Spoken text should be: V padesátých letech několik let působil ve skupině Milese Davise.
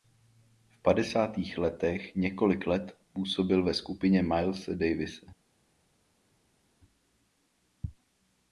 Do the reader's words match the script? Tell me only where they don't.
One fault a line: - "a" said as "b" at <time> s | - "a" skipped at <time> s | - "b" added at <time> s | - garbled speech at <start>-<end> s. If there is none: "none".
none